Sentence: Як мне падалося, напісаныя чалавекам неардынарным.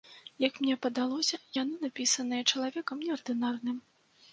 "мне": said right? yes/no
yes